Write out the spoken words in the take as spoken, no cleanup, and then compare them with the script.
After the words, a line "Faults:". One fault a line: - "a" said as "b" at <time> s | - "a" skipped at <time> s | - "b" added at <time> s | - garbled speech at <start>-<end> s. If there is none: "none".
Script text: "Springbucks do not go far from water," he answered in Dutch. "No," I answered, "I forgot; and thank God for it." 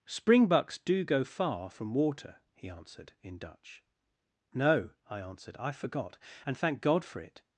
"Springbucks do go far from water," he answered in Dutch. "No," I answered, "I forgot; and thank God for it."
Faults:
- "not" skipped at 1.0 s